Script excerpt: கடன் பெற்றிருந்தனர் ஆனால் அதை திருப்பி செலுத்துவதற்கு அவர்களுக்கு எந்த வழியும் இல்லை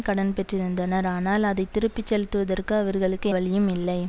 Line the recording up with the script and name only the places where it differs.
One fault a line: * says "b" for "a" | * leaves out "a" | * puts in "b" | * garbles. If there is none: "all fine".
* leaves out "எந்த"